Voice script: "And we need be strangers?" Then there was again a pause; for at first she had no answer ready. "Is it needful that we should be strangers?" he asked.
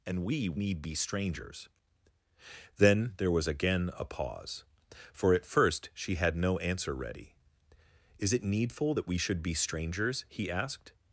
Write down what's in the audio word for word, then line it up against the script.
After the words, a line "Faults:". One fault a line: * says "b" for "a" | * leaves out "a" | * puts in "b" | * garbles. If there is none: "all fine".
"And we need be strangers?" Then there was again a pause; for at first she had no answer ready. "Is it needful that we should be strangers?" he asked.
Faults:
all fine